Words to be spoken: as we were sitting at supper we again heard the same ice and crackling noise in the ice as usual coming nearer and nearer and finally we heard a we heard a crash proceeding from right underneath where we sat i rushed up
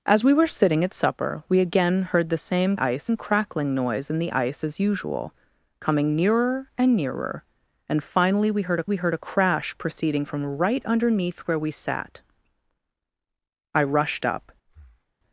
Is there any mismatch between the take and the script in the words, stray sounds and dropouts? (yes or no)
yes